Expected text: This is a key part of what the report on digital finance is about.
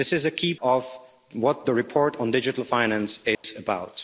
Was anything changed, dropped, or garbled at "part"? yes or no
yes